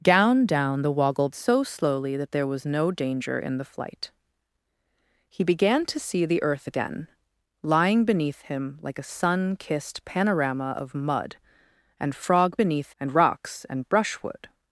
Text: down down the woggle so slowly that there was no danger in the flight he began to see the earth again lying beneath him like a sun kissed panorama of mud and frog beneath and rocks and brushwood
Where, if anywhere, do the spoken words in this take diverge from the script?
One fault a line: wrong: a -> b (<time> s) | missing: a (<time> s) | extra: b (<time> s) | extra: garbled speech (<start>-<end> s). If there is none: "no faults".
no faults